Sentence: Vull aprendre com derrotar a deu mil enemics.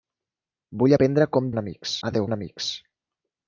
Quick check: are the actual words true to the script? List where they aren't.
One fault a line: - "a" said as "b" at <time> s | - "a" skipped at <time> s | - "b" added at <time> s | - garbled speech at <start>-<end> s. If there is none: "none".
- "derrotar" said as "enemics" at 1.5 s
- "mil" skipped at 2.3 s